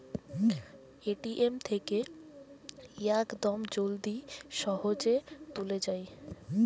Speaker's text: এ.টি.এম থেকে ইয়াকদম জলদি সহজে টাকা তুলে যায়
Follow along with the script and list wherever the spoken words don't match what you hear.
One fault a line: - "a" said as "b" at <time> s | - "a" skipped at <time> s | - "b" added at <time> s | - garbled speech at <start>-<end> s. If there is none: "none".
- "টাকা" skipped at 5.2 s